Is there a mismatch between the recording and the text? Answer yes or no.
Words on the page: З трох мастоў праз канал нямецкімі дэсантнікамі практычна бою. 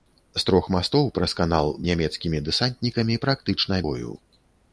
no